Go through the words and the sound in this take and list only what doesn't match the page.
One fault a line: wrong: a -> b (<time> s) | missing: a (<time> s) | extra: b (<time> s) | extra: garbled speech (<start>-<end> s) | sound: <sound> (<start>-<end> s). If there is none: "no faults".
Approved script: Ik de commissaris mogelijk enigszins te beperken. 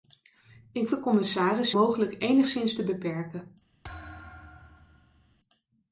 sound: thud (3.8-5.4 s)